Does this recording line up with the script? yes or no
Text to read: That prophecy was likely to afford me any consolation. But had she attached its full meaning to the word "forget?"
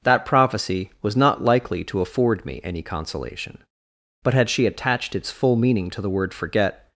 no